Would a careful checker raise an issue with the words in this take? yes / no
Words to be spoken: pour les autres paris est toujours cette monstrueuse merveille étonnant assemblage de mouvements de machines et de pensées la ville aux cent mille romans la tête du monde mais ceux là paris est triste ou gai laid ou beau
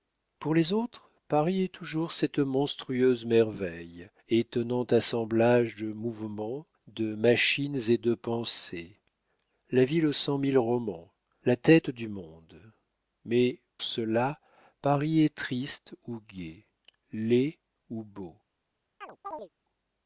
no